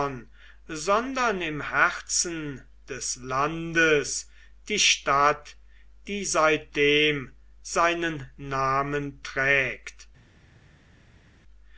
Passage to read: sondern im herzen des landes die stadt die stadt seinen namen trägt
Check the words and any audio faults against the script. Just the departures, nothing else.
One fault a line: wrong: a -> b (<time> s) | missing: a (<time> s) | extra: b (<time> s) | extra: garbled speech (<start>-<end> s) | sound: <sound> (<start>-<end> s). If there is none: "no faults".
wrong: stadt -> seitdem (6.2 s)